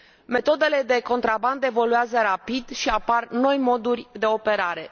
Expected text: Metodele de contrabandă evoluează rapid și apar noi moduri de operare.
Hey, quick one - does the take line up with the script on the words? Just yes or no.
yes